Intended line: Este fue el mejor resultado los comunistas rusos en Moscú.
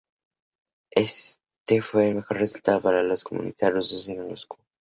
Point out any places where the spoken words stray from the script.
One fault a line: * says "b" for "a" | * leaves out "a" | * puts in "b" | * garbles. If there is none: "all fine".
* puts in "para"